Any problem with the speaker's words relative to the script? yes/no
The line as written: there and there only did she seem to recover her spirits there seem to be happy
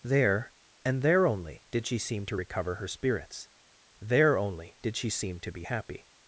yes